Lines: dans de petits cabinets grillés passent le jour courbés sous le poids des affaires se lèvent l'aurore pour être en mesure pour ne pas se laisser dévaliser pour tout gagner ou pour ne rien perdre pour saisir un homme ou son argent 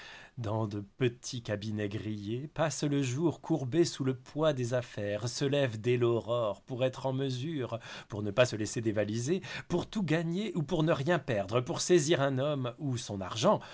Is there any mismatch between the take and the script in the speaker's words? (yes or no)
yes